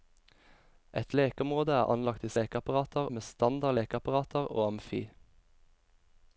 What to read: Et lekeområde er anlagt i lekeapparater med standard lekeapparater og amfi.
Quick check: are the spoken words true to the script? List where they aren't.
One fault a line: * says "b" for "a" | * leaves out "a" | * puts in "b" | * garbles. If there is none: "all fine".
all fine